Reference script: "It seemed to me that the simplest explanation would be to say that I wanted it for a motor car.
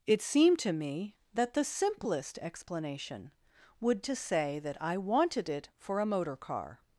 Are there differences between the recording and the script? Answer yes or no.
yes